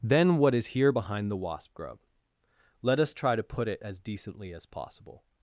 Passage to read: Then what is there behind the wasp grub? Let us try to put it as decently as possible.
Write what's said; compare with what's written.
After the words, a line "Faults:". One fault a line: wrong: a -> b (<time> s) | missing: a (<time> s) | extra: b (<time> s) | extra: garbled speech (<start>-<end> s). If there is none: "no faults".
Then what is here behind the wasp grub? Let us try to put it as decently as possible.
Faults:
wrong: there -> here (0.7 s)